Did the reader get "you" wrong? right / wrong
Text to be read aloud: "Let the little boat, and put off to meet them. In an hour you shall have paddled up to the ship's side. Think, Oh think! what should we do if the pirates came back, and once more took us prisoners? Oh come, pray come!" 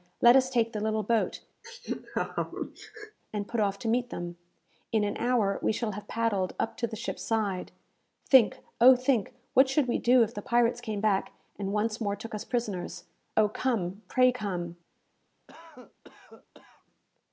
wrong